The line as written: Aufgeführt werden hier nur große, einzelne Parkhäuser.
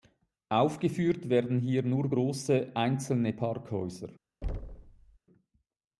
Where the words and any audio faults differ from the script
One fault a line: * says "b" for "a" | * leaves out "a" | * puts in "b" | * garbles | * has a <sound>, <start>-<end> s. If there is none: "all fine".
* has a thud, 4.4-5.2 s